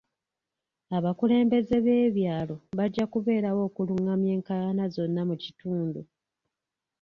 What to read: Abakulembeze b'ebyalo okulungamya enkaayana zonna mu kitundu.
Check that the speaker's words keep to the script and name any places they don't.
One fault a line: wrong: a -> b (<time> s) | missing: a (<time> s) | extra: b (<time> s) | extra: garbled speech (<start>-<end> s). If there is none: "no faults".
extra: bajja kubeerawo (2.8 s)